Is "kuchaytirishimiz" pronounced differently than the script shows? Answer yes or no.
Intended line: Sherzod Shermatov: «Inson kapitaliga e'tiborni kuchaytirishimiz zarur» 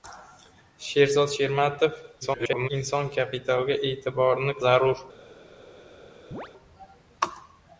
yes